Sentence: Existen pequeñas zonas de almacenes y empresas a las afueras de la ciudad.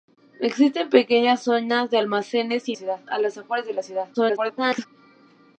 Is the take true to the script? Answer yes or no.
no